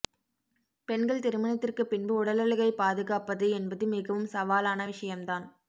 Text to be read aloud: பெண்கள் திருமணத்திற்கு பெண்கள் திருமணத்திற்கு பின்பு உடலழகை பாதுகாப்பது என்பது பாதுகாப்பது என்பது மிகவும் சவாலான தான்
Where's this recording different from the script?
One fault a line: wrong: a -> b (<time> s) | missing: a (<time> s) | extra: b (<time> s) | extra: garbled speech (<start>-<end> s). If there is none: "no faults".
missing: பெண்கள் திருமணத்திற்கு (1.8 s)
missing: பாதுகாப்பது என்பது (3.9 s)
extra: விஷயம் (4.9 s)